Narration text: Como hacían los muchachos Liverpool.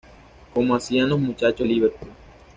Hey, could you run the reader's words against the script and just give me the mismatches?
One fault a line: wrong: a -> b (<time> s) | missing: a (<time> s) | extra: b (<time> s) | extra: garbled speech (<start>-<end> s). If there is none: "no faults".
no faults